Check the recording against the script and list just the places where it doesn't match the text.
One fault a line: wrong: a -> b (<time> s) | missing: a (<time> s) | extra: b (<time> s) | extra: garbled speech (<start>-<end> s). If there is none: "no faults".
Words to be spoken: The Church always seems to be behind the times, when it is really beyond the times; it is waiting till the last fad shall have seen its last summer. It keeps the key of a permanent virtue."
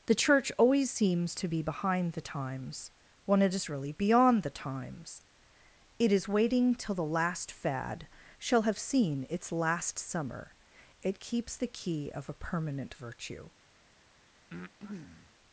no faults